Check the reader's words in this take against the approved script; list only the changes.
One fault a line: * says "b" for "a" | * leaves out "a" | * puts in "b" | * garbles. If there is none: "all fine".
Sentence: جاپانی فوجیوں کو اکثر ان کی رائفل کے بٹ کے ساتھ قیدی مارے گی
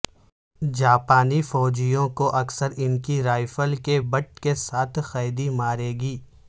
all fine